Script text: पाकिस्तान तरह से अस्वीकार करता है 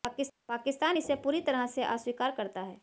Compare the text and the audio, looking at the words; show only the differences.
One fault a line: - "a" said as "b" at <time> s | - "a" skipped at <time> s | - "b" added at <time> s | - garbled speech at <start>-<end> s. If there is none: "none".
- "इसे पूरी" added at 1.0 s